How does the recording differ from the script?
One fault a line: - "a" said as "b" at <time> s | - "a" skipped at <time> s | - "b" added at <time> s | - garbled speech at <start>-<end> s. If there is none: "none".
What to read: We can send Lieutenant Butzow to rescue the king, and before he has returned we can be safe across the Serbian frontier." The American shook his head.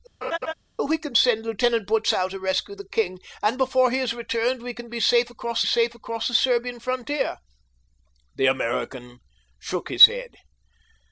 - "safe across" added at 5.6 s